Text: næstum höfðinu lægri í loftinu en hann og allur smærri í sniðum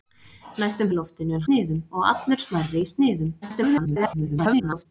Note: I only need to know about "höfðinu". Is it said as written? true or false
false